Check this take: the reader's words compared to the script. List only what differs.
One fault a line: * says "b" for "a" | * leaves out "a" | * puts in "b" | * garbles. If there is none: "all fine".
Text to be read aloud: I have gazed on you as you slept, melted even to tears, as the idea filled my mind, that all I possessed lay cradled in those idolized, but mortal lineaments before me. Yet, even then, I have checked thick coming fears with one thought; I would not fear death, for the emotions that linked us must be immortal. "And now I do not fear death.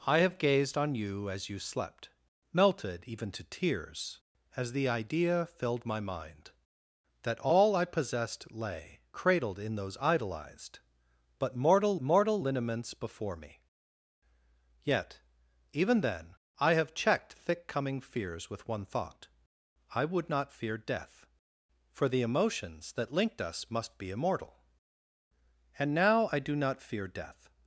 * puts in "mortal"